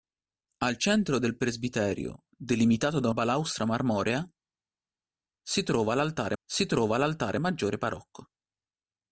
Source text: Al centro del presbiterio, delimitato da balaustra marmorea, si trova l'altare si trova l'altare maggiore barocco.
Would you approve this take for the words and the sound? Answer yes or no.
yes